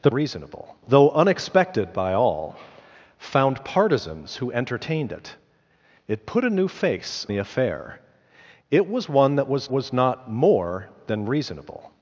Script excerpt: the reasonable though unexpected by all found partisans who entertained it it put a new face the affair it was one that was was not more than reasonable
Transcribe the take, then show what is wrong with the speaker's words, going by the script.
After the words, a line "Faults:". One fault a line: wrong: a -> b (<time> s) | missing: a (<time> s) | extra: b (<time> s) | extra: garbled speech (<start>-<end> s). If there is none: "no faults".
the reasonable though unexpected by all found partisans who entertained it it put a new face the affair it was one that was was not more than reasonable
Faults:
no faults